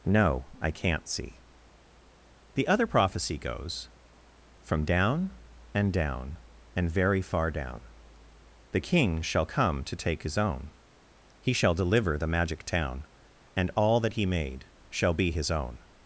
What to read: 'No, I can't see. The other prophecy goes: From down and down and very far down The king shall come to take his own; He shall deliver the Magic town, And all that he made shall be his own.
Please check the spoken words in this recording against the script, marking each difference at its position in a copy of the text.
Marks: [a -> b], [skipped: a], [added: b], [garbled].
'No, I can't see. The other prophecy goes: From down and down and very far down The king shall come to take his own; He shall deliver the Magic town, And all that he made shall be his own.